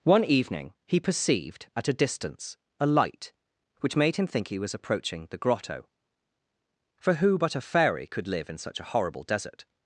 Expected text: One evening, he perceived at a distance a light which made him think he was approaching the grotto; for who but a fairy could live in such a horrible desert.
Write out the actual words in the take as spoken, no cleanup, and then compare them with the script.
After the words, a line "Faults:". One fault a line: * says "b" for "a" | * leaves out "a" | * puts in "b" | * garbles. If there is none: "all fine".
One evening, he perceived at a distance a light which made him think he was approaching the grotto; for who but a fairy could live in such a horrible desert.
Faults:
all fine